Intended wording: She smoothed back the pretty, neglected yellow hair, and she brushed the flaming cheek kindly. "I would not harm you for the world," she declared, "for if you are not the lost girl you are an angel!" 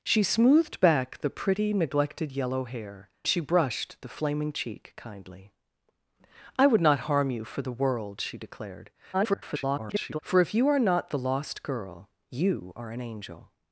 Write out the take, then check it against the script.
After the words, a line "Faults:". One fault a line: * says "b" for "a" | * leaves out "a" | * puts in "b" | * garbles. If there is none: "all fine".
She smoothed back the pretty, neglected yellow hair, she brushed the flaming cheek kindly. "I would not harm you for the world," she declared, [garbled] "for if you are not the lost girl you are an angel!"
Faults:
* leaves out "and"
* garbles